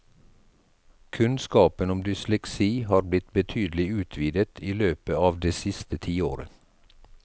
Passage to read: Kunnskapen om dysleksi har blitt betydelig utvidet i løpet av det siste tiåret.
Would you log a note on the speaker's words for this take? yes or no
no